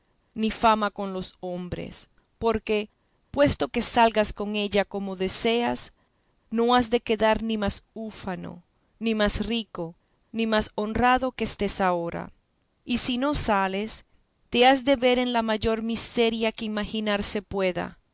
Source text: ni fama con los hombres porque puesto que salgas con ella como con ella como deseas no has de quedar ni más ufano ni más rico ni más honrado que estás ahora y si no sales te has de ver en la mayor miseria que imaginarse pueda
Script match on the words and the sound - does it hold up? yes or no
no